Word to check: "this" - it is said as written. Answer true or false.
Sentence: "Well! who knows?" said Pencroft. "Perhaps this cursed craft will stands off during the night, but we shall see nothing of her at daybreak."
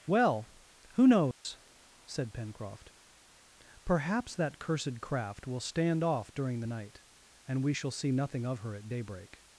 false